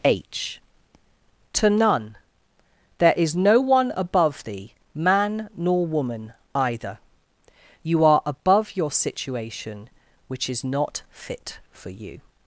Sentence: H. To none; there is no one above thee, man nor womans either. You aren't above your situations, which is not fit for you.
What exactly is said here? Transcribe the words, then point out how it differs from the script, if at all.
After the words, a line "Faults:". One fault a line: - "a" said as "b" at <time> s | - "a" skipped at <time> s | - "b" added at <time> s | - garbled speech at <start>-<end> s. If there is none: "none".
H. To none; there is no one above thee, man nor woman either. You are above your situation, which is not fit for you.
Faults:
- "womans" said as "woman" at 5.9 s
- "aren't" said as "are" at 8.0 s
- "situations" said as "situation" at 8.9 s